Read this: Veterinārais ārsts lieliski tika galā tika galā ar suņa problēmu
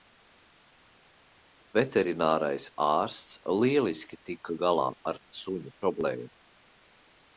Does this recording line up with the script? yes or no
no